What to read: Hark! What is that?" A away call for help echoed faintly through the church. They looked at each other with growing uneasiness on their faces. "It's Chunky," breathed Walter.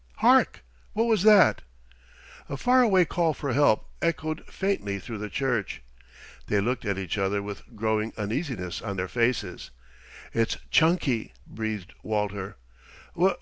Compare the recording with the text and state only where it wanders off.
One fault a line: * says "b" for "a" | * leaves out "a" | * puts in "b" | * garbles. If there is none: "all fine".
* says "was" for "is"
* puts in "far"